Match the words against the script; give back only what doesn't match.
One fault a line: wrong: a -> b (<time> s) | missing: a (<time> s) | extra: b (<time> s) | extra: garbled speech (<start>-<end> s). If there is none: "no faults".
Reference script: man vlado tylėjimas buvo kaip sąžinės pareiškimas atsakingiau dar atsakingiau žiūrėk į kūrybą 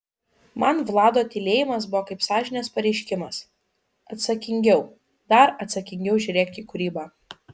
no faults